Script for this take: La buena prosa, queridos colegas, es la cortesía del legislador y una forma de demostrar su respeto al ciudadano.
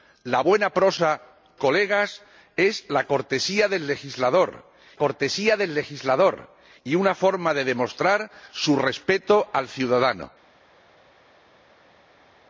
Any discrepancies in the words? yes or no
yes